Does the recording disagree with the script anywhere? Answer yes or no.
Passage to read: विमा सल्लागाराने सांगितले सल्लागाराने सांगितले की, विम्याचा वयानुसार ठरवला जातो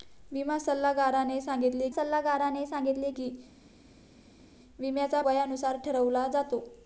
no